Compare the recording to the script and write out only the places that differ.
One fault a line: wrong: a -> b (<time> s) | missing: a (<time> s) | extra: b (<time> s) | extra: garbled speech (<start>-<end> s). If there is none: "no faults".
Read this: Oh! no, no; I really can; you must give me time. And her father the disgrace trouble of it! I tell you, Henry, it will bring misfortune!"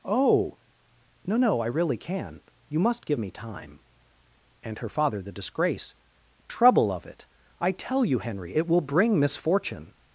no faults